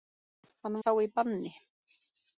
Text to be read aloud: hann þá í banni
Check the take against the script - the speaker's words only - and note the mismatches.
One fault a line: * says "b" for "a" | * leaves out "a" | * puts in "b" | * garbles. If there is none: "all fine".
all fine